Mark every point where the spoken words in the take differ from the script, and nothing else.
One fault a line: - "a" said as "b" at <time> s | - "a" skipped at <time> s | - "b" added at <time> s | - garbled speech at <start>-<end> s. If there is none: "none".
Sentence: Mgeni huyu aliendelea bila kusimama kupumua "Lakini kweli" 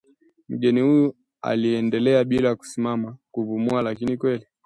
none